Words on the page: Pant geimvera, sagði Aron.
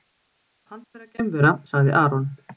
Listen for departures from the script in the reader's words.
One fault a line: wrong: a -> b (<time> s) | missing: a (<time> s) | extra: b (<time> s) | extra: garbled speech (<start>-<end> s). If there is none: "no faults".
extra: vera (0.9 s)